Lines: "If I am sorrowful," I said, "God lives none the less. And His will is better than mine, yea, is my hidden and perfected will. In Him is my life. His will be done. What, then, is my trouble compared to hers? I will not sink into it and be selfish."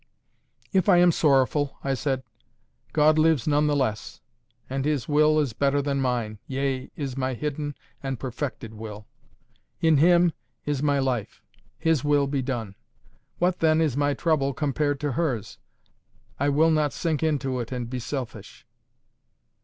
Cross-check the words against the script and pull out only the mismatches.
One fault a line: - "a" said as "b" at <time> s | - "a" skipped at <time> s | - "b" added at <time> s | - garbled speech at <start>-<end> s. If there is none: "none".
none